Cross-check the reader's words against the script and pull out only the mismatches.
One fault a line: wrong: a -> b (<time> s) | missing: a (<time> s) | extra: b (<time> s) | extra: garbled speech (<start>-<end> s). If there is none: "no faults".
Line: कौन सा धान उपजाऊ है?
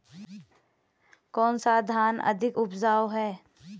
extra: अधिक (2.3 s)